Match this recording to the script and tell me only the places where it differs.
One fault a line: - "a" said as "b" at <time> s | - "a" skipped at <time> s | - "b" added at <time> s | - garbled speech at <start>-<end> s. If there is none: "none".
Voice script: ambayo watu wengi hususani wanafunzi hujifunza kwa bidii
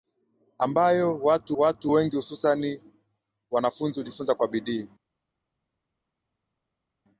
- "watu" added at 1.5 s